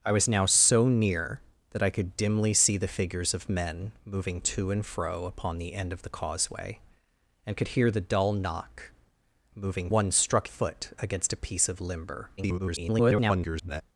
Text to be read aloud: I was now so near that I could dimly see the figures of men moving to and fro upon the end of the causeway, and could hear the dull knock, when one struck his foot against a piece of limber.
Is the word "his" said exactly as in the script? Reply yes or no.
no